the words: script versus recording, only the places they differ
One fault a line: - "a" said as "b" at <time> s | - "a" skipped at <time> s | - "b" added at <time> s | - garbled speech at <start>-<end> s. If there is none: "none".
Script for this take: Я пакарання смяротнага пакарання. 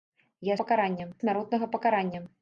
none